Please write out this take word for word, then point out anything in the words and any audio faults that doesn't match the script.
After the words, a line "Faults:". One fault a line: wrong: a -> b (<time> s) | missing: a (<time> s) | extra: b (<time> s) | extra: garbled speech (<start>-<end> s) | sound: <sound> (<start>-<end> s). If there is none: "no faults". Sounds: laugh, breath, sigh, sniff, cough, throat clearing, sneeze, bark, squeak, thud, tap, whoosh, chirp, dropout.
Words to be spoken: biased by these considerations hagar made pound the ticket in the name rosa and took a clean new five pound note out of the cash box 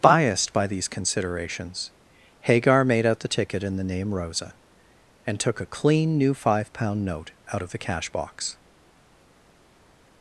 biased by these considerations hagar made out the ticket in the name rosa and took a clean new five pound note out of the cash box
Faults:
wrong: pound -> out (3.0 s)